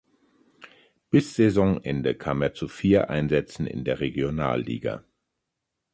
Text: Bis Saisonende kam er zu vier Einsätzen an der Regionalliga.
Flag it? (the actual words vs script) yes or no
yes